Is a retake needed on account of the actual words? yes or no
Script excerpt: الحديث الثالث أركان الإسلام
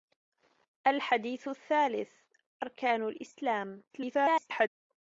yes